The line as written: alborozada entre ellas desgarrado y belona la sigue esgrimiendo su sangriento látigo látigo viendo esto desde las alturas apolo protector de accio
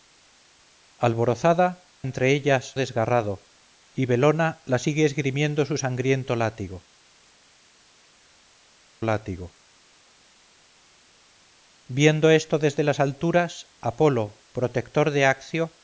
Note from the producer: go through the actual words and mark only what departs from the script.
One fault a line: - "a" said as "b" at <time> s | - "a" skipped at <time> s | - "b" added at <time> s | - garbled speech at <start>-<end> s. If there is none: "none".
none